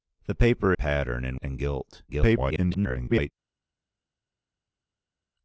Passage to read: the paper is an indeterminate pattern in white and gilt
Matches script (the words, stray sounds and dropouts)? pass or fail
fail